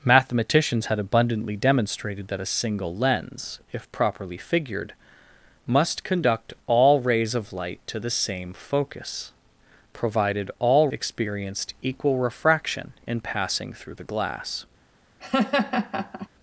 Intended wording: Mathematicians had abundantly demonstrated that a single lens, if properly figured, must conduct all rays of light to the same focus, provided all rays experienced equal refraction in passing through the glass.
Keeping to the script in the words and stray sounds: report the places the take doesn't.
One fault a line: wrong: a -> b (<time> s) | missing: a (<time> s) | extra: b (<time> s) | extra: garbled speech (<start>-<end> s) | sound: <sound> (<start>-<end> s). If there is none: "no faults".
missing: rays (10.9 s)
sound: laugh (15.2-16.3 s)